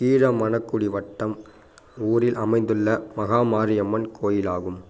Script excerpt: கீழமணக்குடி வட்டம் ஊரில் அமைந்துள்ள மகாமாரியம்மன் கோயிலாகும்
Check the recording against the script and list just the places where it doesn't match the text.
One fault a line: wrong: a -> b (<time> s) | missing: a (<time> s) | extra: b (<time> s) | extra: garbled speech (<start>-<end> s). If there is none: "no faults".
no faults